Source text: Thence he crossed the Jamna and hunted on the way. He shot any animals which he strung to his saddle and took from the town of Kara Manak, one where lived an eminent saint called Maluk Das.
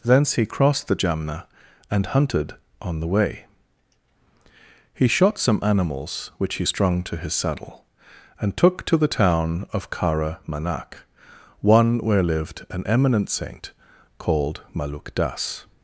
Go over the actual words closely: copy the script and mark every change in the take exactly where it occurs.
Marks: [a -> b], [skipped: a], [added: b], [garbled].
Thence he crossed the Jamna and hunted on the way. He shot [any -> some] animals which he strung to his saddle and took [from -> to] the town of Kara Manak, one where lived an eminent saint called Maluk Das.